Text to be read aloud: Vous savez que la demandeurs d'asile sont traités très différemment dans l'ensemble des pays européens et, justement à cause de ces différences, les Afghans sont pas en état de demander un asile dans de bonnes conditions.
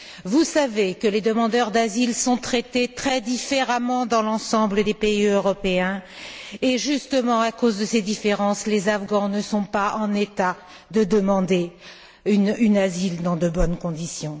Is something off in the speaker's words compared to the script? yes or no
yes